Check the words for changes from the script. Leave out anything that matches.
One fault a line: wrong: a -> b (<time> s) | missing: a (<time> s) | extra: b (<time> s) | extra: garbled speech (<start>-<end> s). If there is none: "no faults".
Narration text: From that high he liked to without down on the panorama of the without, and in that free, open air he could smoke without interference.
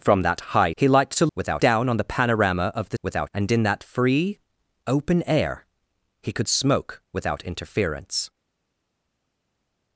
no faults